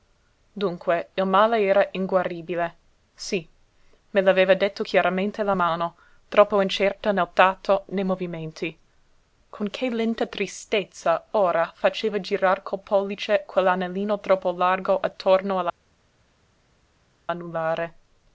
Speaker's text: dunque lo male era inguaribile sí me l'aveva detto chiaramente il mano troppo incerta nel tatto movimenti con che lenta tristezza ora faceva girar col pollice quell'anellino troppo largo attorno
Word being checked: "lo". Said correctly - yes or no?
no